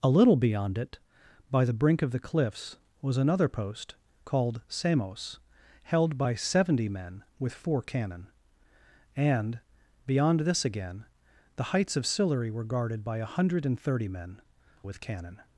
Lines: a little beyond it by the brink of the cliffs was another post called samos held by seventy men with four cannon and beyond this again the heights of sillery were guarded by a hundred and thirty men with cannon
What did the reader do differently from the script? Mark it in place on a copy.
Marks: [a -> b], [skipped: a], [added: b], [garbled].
a little beyond it by the brink of the cliffs was another post called samos held by seventy men with four cannon and beyond this again the heights of sillery were guarded by a hundred and thirty men with cannon